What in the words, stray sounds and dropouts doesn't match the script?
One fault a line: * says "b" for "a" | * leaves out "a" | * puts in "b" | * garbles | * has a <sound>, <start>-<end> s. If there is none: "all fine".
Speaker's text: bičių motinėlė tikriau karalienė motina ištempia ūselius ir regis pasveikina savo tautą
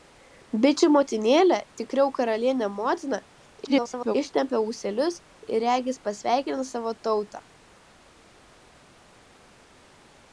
* garbles